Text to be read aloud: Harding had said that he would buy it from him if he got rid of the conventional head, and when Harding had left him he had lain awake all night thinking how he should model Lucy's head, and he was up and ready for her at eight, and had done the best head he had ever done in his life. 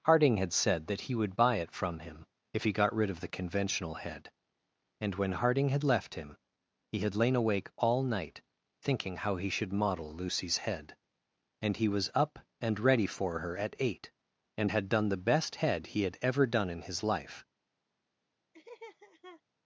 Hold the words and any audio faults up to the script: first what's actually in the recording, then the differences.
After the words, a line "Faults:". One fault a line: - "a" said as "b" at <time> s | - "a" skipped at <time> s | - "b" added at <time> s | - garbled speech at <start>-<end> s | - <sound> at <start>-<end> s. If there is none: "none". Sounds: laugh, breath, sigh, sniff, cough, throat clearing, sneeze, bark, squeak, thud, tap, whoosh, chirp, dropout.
Harding had said that he would buy it from him if he got rid of the conventional head, and when Harding had left him he had lain awake all night thinking how he should model Lucy's head, and he was up and ready for her at eight, and had done the best head he had ever done in his life.
Faults:
- laugh at 18.5-19.4 s